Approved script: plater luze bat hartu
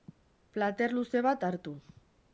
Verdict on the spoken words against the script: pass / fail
pass